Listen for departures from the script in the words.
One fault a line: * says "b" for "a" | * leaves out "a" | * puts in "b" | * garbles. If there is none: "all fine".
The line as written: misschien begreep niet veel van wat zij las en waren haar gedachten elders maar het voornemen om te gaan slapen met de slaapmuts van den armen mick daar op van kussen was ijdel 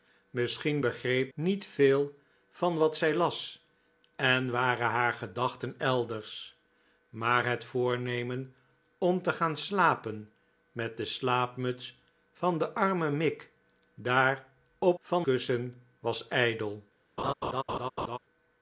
all fine